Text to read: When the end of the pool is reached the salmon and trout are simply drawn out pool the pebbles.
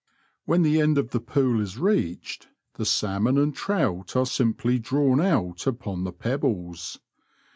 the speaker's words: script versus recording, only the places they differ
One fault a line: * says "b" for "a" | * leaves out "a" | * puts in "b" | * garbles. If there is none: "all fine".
* says "upon" for "pool"